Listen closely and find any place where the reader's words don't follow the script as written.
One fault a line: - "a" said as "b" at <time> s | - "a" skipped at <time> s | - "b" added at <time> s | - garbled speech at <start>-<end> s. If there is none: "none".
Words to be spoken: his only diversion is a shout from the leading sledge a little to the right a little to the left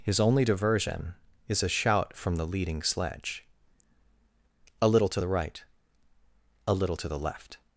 none